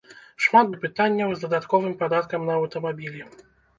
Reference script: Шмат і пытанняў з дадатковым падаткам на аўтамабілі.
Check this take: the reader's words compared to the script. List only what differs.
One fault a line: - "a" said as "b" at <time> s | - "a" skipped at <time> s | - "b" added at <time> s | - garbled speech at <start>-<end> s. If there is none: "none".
none